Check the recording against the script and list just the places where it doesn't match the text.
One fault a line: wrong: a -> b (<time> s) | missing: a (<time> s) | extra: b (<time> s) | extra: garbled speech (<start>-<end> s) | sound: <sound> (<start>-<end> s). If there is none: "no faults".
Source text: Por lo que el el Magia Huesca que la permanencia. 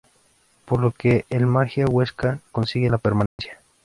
missing: el (1.4 s)
wrong: que -> consigue (2.5 s)
sound: dropout (3.3-3.4 s)